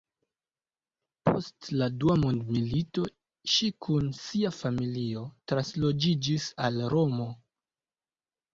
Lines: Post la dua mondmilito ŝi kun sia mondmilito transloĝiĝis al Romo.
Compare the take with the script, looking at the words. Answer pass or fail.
fail